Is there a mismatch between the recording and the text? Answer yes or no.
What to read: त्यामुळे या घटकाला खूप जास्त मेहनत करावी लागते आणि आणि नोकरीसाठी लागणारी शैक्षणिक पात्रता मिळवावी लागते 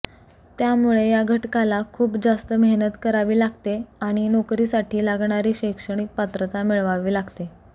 yes